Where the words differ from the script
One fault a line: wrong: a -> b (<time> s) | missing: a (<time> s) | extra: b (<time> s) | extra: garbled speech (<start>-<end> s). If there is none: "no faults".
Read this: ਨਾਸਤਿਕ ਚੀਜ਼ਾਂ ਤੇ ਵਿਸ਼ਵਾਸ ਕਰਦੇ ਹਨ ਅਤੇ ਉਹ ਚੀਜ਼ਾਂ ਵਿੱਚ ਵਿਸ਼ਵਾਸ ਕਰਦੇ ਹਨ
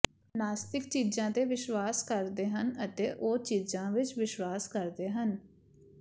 no faults